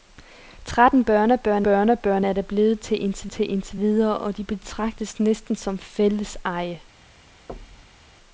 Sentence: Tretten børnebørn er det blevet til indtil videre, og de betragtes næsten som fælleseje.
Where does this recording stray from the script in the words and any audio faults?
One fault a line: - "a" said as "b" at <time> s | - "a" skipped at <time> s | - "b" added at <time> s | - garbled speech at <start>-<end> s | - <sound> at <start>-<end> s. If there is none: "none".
- "børnebørn" added at 1.6 s
- "til indtil" added at 3.3 s
- thud at 7.5-8.1 s